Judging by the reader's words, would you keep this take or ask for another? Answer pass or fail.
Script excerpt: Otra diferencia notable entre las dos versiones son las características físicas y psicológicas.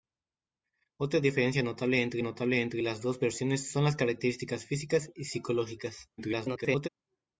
fail